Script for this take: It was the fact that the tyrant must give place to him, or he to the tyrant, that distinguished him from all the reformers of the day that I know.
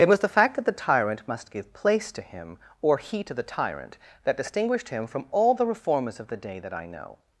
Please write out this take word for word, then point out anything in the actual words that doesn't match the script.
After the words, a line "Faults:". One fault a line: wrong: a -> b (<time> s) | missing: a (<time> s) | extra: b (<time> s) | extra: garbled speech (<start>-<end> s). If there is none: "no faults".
It was the fact that the tyrant must give place to him, or he to the tyrant, that distinguished him from all the reformers of the day that I know.
Faults:
no faults